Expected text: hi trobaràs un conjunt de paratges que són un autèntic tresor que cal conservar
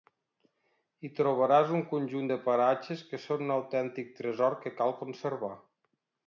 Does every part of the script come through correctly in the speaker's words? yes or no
yes